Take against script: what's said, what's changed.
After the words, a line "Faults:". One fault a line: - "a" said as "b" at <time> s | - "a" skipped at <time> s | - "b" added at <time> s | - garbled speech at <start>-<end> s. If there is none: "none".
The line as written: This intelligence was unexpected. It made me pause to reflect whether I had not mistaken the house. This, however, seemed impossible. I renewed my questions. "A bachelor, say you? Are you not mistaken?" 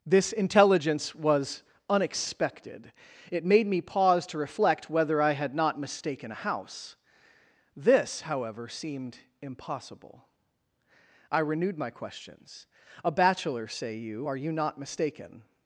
This intelligence was unexpected. It made me pause to reflect whether I had not mistaken a house. This, however, seemed impossible. I renewed my questions. "A bachelor, say you? Are you not mistaken?"
Faults:
- "the" said as "a" at 6.3 s